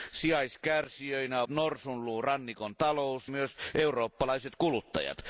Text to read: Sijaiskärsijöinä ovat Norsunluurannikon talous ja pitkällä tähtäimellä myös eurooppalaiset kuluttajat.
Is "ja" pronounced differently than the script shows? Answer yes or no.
yes